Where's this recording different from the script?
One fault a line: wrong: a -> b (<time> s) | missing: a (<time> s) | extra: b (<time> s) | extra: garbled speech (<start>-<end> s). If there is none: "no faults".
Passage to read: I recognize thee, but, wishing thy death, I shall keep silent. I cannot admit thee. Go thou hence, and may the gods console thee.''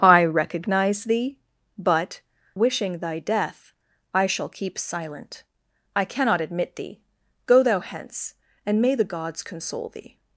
no faults